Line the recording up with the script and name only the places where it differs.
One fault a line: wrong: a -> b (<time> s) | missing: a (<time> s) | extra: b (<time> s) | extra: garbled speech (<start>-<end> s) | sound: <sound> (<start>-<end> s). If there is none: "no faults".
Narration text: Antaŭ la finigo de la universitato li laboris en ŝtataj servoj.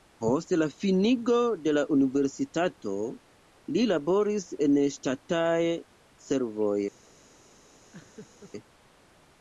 wrong: Antaŭ -> Post (0.2 s)
sound: laugh (7.9-8.5 s)